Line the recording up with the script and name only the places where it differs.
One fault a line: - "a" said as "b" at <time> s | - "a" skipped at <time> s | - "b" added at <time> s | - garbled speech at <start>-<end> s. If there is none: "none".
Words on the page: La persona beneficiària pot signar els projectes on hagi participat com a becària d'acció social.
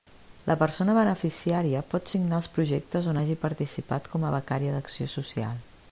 none